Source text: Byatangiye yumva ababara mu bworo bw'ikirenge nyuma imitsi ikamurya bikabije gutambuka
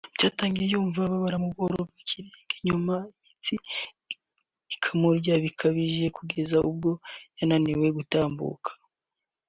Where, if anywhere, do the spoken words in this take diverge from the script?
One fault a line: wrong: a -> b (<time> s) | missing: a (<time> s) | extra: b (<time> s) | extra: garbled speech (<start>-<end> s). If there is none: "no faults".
extra: kugeza ubwo yananiwe (6.2 s)